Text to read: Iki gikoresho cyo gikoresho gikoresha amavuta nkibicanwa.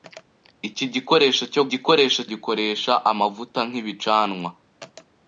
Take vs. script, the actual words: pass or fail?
pass